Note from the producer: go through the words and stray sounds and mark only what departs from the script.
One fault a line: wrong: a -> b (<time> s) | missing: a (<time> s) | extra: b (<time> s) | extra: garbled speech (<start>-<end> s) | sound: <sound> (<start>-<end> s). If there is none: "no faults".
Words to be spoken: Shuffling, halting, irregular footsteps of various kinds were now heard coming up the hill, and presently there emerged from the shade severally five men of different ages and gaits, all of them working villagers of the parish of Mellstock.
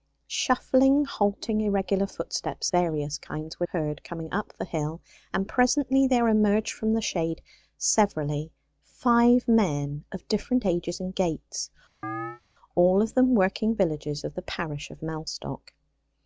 missing: of (2.7 s)
missing: now (3.7 s)
sound: chirp (12.0-12.4 s)